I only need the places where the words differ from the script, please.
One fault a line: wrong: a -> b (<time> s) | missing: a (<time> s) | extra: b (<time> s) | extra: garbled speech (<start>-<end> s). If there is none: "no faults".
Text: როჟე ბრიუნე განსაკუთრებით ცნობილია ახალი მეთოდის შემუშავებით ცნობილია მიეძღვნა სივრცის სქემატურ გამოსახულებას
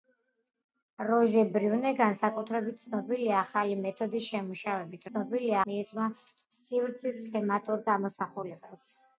no faults